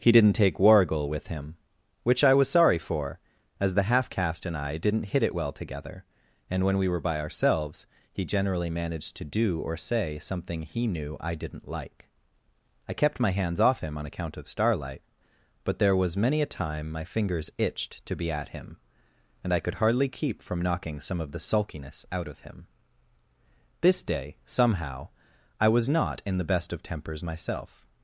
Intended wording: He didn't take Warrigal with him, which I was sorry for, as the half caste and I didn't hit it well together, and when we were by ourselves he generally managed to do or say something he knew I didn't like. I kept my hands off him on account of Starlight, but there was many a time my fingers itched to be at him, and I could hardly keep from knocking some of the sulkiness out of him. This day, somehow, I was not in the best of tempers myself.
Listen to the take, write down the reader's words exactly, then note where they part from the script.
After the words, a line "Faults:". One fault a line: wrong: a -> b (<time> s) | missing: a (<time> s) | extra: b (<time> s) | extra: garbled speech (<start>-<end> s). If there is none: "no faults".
He didn't take Warrigal with him, which I was sorry for, as the half caste and I didn't hit it well together, and when we were by ourselves he generally managed to do or say something he knew I didn't like. I kept my hands off him on account of Starlight, but there was many a time my fingers itched to be at him, and I could hardly keep from knocking some of the sulkiness out of him. This day, somehow, I was not in the best of tempers myself.
Faults:
no faults